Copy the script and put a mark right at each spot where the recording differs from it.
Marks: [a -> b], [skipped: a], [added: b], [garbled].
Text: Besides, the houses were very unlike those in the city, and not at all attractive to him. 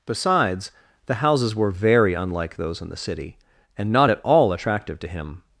Besides, the houses were very unlike those in the city, and not at all attractive to him.